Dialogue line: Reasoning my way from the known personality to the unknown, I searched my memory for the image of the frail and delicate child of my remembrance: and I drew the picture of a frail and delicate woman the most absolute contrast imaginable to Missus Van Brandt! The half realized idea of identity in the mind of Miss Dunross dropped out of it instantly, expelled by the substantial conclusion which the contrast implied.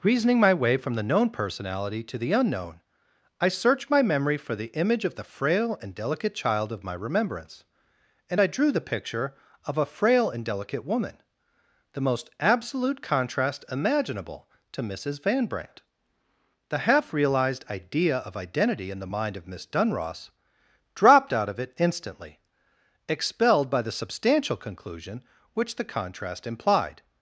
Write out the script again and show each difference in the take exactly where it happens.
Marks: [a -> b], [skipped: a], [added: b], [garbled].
Reasoning my way from the known personality to the unknown, I searched my memory for the image of the frail and delicate child of my remembrance: and I drew the picture of a frail and delicate woman the most absolute contrast imaginable to Missus Van Brandt! The half realized idea of identity in the mind of Miss Dunross dropped out of it instantly, expelled by the substantial conclusion which the contrast implied.